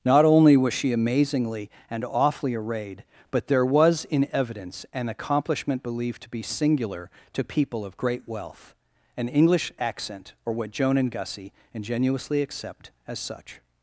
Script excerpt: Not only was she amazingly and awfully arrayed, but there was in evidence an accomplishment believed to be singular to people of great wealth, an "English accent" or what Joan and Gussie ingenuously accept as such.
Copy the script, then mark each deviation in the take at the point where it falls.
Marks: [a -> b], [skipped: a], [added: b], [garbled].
Not only was she amazingly and awfully arrayed, but there was in evidence an accomplishment believed to be singular to people of great wealth, an "English accent" or what Joan and Gussie ingenuously accept as such.